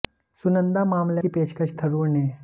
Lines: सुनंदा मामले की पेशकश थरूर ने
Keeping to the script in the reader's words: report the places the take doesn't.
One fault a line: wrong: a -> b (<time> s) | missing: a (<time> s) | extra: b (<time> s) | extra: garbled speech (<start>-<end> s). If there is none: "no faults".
no faults